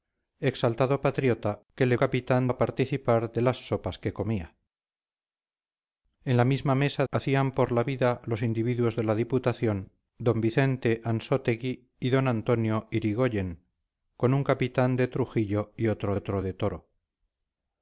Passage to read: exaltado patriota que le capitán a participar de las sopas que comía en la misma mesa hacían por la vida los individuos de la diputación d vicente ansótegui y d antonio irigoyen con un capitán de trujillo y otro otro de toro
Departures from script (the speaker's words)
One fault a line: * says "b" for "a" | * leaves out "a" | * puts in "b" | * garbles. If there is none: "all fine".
all fine